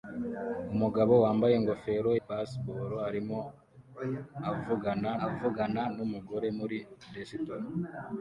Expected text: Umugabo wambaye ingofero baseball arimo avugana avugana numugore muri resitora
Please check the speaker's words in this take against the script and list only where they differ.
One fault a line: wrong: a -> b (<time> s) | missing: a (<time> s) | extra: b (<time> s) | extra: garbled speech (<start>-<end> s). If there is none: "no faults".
no faults